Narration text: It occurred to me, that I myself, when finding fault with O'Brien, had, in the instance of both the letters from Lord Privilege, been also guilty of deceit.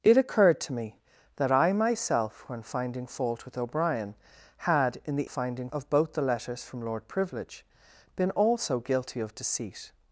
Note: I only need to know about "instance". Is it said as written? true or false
false